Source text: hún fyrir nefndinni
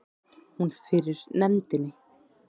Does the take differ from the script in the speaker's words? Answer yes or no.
no